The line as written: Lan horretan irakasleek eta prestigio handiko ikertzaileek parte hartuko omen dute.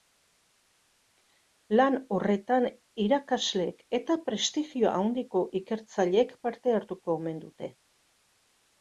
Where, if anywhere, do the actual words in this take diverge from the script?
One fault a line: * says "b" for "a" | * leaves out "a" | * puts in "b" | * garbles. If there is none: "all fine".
all fine